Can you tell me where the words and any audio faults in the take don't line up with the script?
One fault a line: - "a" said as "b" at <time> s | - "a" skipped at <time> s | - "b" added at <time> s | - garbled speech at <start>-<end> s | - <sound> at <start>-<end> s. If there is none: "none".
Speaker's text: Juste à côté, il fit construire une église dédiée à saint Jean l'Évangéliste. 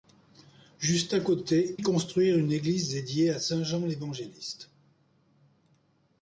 - "il fit" skipped at 1.8 s